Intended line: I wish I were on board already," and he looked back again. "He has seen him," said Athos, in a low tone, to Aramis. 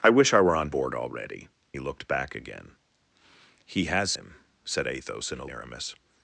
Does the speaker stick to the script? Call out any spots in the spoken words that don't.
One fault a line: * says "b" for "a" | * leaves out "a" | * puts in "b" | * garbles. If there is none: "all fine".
* leaves out "and"
* leaves out "seen"
* leaves out "low tone to"